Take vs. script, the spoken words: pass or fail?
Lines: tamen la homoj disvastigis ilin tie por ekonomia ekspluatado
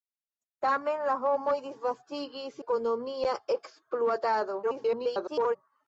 fail